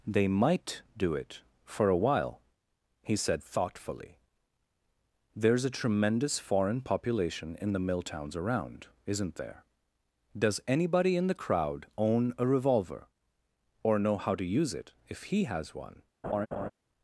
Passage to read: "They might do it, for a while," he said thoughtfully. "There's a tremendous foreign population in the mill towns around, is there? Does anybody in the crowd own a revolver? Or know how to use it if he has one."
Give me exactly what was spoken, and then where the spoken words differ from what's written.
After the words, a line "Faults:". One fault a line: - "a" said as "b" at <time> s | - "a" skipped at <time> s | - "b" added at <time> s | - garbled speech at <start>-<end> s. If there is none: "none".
"They might do it, for a while," he said thoughtfully. "There's a tremendous foreign population in the mill towns around, isn't there? Does anybody in the crowd own a revolver? Or know how to use it if he has one."
Faults:
- "is" said as "isn't" at 9.1 s